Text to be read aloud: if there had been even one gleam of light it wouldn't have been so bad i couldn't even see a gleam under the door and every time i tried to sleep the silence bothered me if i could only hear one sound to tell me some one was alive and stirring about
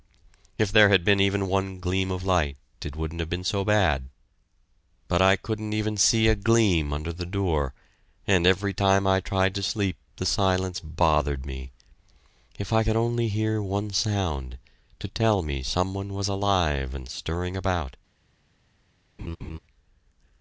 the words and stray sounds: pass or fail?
fail